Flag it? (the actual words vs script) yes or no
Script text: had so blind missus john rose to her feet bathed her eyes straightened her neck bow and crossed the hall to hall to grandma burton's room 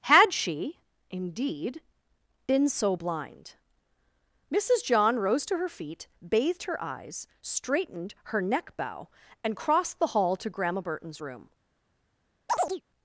yes